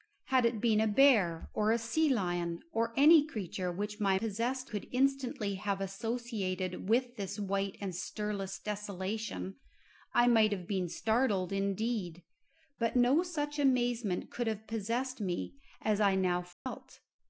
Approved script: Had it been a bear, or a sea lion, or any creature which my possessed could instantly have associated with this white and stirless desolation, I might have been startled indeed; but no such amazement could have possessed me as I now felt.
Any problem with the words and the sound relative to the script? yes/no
yes